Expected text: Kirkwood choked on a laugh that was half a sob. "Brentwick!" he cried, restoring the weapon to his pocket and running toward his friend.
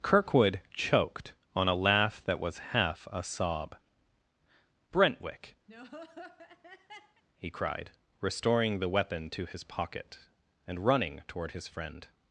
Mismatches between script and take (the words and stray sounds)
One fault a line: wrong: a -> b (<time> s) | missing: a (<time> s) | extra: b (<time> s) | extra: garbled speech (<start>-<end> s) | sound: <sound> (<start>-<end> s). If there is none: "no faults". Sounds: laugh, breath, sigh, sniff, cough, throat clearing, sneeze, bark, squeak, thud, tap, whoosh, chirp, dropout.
sound: laugh (5.7-7.2 s)